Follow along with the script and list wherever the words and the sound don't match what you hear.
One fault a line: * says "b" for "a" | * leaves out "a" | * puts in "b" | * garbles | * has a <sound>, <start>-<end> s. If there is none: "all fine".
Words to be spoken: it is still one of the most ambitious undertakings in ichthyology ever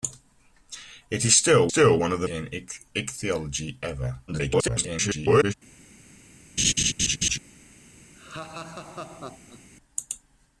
* puts in "still"
* leaves out "most ambitious undertakings"
* garbles
* has a laugh, 6.6-7.4 s
* has a laugh, 8.2-9.7 s